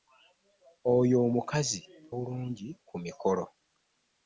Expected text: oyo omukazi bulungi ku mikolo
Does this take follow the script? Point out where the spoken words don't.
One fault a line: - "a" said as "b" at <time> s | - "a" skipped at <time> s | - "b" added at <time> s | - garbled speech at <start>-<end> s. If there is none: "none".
none